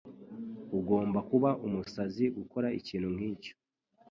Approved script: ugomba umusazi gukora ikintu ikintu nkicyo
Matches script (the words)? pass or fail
fail